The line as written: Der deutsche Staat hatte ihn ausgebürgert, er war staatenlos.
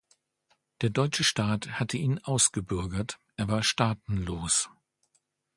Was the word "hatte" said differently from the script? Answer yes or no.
no